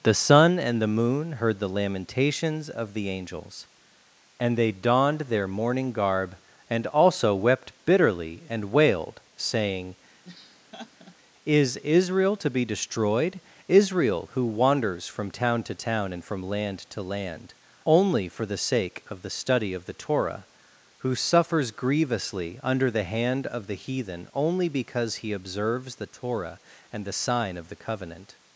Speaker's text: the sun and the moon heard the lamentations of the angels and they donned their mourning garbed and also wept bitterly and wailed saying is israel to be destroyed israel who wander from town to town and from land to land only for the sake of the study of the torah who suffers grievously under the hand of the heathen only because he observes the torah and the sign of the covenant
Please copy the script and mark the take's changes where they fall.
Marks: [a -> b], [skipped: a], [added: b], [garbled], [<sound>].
the sun and the moon heard the lamentations of the angels and they donned their mourning [garbed -> garb] and also wept bitterly and wailed saying [laugh] is israel to be destroyed israel who [wander -> wanders] from town to town and from land to land only for the sake of the study of the torah who suffers grievously under the hand of the heathen only because he observes the torah and the sign of the covenant